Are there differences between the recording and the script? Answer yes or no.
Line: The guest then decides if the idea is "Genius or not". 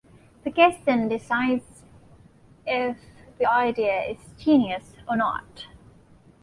no